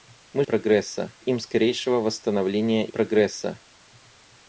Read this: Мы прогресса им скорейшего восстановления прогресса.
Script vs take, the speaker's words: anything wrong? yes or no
no